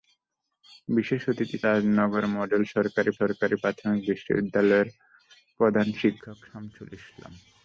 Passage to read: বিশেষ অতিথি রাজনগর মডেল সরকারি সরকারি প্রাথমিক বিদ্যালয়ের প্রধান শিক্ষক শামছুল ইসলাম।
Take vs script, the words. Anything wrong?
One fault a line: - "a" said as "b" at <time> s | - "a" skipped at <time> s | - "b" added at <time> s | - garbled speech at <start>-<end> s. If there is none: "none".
none